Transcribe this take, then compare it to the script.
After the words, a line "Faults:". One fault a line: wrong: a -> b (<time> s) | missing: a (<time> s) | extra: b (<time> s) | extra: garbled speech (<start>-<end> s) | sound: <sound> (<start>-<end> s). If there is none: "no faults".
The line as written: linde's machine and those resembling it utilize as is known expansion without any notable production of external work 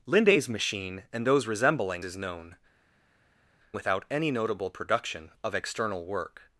linde's machine and those resembling is known without any notable production of external work
Faults:
missing: it utilize as (2.0 s)
missing: expansion (2.6 s)